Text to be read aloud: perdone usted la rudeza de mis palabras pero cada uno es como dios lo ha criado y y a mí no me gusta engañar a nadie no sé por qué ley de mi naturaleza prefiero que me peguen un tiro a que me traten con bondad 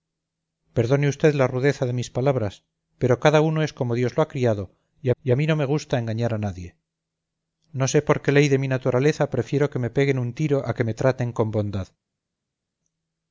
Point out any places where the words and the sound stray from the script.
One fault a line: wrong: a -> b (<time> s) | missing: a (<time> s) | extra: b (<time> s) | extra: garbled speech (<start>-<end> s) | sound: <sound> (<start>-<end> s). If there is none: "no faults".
no faults